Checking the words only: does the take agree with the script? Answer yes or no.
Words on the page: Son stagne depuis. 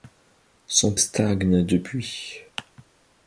yes